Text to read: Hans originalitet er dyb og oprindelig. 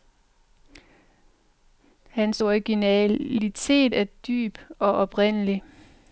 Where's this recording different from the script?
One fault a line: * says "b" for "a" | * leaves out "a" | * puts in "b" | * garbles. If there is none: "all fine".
all fine